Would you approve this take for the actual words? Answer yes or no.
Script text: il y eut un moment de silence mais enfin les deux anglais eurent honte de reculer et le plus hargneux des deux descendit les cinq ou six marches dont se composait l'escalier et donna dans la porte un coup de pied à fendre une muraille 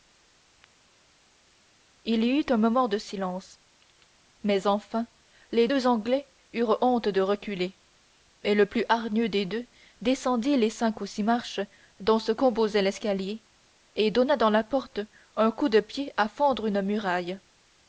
yes